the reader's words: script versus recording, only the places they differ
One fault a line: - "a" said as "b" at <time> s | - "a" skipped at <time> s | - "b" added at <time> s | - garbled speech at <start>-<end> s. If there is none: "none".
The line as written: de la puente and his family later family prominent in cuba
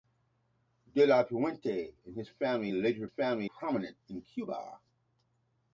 none